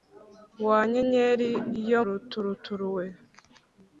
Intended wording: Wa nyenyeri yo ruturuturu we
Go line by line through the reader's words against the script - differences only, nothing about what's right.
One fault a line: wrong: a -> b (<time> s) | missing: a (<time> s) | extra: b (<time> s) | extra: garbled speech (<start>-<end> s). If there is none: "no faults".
no faults